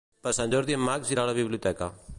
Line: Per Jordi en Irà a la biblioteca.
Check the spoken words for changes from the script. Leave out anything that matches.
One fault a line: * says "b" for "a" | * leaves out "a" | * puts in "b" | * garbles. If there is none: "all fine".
* puts in "Sant"
* puts in "Max"